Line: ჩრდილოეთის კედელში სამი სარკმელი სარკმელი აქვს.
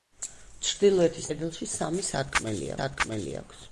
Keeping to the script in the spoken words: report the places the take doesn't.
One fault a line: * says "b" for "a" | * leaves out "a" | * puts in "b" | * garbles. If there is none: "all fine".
all fine